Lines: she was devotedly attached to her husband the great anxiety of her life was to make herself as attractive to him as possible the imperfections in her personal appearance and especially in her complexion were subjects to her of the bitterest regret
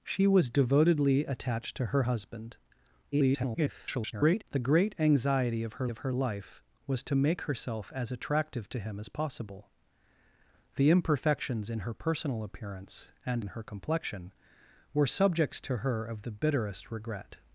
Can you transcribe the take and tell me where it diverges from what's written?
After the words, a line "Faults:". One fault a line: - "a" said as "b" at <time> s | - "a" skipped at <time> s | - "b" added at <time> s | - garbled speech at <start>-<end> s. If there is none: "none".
she was devotedly attached to her husband [garbled] the great anxiety of her of her life was to make herself as attractive to him as possible the imperfections in her personal appearance and in her complexion were subjects to her of the bitterest regret
Faults:
- garbled speech at 3.1-4.4 s
- "of her" added at 5.9 s
- "especially" skipped at 13.4 s